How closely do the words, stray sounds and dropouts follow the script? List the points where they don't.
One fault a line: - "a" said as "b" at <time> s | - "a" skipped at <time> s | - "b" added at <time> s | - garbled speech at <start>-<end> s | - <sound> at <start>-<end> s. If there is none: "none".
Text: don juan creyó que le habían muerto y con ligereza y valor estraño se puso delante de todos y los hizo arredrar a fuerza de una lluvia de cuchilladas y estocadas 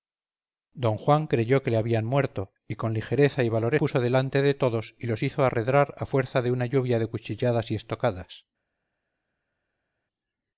- "estraño se" skipped at 3.8 s